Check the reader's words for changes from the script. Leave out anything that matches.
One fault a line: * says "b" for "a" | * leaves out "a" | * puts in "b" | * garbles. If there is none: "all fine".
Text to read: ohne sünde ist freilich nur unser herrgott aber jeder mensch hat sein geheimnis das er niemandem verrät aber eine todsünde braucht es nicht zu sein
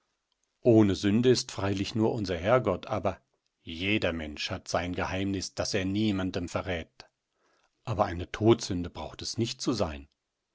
all fine